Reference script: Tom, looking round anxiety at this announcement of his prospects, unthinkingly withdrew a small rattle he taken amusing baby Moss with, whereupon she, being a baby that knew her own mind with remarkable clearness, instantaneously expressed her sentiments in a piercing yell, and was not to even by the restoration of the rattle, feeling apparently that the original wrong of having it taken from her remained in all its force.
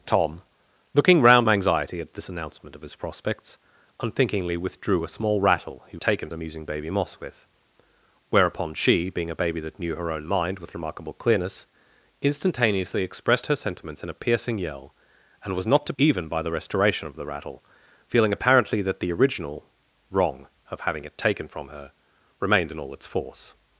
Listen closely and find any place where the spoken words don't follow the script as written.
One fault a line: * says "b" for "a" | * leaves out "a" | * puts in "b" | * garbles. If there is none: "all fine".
all fine